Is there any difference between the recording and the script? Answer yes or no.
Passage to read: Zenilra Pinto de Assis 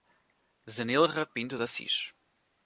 no